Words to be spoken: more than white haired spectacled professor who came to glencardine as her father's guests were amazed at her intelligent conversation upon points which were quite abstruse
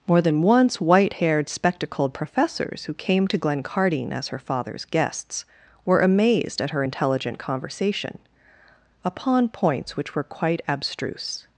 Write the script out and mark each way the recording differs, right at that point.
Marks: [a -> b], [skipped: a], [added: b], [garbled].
more than [added: once] white haired spectacled [professor -> professors] who came to glencardine as her father's guests were amazed at her intelligent conversation upon points which were quite abstruse